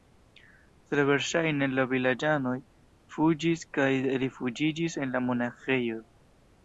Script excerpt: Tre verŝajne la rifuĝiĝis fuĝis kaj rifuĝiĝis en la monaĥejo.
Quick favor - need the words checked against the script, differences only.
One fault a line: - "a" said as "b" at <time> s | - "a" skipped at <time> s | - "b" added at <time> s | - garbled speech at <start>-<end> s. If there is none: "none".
- "rifuĝiĝis" said as "vilaĝanoj" at 1.9 s